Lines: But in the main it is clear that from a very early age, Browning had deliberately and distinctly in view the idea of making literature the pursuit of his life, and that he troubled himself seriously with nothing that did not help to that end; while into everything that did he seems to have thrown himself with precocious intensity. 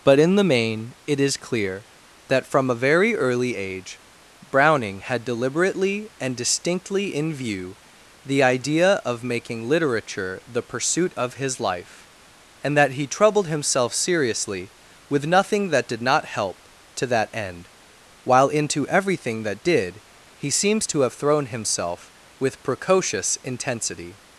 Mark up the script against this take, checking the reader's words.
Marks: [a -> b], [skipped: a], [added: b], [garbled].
But in the main it is clear that from a very early age, Browning had deliberately and distinctly in view the idea of making literature the pursuit of his life, and that he troubled himself seriously with nothing that did not help to that end; while into everything that did he seems to have thrown himself with precocious intensity.